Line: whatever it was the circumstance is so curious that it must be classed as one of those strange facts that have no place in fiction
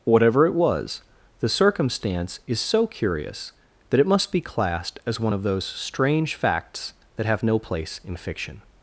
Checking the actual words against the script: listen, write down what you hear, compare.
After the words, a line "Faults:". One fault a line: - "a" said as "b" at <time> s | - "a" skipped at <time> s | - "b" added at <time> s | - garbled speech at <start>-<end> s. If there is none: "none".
whatever it was the circumstance is so curious that it must be classed as one of those strange facts that have no place in fiction
Faults:
none